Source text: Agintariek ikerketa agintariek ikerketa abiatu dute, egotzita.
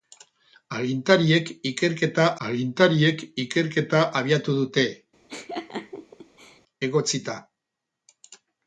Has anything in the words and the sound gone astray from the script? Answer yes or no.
yes